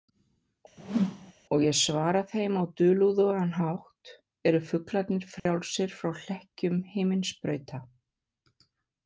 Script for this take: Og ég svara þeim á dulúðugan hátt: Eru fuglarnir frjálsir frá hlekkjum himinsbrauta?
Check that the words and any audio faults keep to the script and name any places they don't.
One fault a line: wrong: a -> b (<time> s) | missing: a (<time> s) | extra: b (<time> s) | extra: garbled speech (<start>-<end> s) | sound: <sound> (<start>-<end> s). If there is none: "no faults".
sound: whoosh (0.8-1.3 s)
sound: dropout (5.4-5.5 s)